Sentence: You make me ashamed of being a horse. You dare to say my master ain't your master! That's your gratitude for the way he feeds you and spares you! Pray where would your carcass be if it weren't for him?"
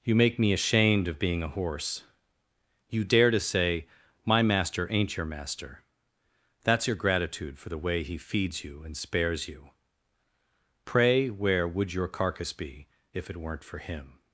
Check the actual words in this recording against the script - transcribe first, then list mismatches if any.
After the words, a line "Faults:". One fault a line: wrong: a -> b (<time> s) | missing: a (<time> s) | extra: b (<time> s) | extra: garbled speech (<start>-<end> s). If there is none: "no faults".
You make me ashamed of being a horse. You dare to say my master ain't your master! That's your gratitude for the way he feeds you and spares you! Pray where would your carcass be if it weren't for him?"
Faults:
no faults